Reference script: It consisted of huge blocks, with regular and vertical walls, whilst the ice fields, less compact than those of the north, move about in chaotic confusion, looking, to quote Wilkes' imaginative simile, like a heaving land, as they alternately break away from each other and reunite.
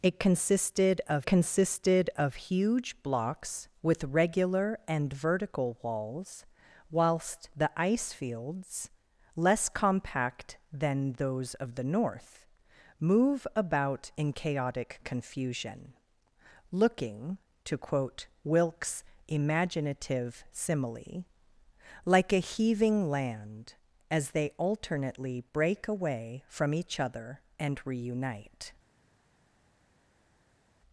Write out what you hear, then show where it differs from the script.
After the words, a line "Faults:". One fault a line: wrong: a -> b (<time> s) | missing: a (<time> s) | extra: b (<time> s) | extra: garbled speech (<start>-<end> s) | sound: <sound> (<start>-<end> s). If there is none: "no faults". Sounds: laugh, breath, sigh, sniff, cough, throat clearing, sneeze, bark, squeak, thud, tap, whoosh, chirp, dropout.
It consisted of consisted of huge blocks, with regular and vertical walls, whilst the ice fields, less compact than those of the north, move about in chaotic confusion, looking, to quote Wilkes' imaginative simile, like a heaving land, as they alternately break away from each other and reunite.
Faults:
extra: consisted of (1.3 s)